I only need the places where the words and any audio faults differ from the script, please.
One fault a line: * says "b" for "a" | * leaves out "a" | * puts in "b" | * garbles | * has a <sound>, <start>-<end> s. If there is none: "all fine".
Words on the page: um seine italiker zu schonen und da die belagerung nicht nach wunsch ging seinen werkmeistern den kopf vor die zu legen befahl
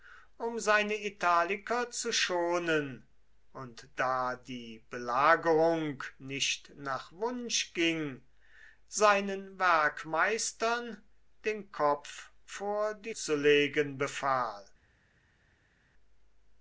all fine